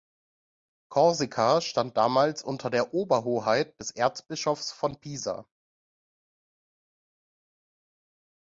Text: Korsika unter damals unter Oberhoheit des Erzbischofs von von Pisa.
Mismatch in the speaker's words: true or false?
true